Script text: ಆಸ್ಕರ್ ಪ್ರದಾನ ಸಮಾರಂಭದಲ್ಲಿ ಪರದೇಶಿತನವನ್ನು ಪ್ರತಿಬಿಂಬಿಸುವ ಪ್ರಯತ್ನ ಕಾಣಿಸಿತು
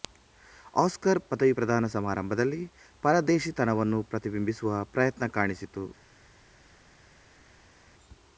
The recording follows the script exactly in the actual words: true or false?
false